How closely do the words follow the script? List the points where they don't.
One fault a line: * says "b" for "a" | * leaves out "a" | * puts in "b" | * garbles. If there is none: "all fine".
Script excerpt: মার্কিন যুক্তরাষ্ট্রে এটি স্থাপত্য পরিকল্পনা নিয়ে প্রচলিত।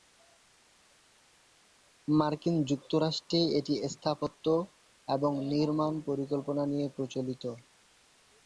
* puts in "এবং নির্মাণ"